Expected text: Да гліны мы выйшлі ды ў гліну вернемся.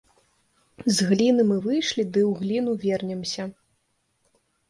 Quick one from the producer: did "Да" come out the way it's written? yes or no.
no